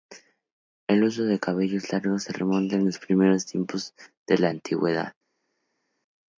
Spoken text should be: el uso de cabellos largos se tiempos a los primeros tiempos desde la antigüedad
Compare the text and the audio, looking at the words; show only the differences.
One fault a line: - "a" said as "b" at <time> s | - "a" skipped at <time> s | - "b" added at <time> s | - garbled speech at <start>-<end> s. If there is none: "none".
- "tiempos" said as "remonta" at 2.3 s
- "desde" said as "de" at 4.2 s